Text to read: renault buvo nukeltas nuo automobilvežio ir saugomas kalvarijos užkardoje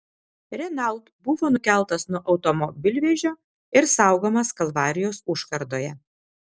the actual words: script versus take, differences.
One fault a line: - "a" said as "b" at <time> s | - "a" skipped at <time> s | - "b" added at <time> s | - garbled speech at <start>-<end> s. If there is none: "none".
none